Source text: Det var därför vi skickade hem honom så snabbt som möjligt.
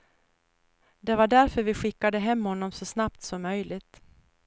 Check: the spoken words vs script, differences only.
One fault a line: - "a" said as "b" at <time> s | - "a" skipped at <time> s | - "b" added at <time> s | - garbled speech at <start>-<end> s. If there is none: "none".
none